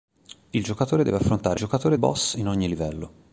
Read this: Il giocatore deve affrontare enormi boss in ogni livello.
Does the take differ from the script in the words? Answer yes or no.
yes